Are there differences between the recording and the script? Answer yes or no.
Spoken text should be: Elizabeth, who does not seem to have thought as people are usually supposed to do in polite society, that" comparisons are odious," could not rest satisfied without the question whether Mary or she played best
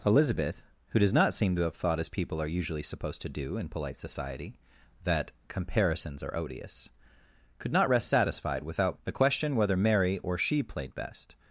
no